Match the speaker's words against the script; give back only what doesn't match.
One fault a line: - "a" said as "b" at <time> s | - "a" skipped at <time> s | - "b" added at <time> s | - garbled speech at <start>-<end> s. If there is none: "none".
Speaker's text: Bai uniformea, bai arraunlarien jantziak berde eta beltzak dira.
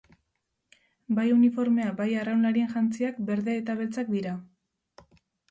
none